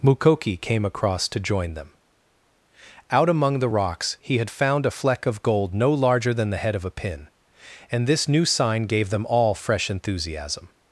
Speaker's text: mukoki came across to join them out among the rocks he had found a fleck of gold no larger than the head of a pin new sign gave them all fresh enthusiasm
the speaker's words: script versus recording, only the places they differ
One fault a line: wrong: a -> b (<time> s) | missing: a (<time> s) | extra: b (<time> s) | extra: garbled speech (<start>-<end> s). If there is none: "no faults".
extra: and this (7.9 s)